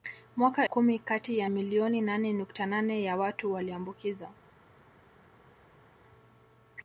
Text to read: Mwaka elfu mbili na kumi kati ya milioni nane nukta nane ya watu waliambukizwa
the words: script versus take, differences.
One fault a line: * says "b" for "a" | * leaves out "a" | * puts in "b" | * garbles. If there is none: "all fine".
* leaves out "elfu mbili na"